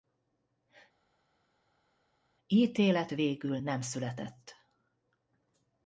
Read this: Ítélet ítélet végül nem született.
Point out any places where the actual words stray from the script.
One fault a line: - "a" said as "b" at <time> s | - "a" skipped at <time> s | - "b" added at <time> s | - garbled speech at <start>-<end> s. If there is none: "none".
- "ítélet" skipped at 3.1 s